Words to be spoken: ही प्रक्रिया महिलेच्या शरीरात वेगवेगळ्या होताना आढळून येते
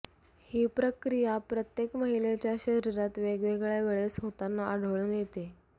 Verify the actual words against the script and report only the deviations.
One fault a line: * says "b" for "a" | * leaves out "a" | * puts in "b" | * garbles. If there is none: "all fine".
* puts in "प्रत्येक"
* puts in "वेळेस"